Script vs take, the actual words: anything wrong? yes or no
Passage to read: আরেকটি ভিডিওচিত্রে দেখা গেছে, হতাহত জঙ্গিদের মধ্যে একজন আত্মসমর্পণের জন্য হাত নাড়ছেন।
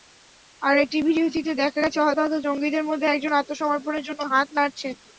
no